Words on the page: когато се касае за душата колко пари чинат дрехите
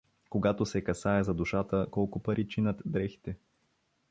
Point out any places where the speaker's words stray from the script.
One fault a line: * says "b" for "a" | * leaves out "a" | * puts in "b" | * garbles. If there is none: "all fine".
all fine